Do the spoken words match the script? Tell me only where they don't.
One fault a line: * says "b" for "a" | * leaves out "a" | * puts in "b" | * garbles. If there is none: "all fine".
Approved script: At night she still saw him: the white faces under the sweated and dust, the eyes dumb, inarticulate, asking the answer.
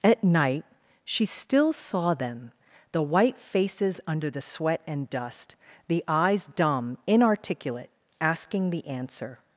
* says "them" for "him"
* says "sweat" for "sweated"